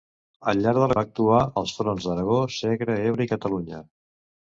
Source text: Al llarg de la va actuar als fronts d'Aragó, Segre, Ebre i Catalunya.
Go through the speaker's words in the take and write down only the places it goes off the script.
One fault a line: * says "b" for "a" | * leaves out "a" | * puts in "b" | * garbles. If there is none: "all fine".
all fine